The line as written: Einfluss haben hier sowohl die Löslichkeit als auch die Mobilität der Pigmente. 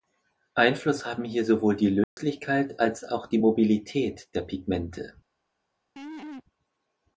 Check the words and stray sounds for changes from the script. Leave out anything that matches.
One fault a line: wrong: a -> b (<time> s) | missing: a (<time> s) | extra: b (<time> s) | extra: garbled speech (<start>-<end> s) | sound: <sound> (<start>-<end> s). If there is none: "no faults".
sound: dropout (2.0-2.2 s)
sound: laugh (6.0-6.4 s)